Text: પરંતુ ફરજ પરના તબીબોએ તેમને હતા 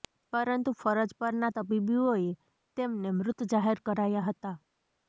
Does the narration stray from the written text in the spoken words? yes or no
yes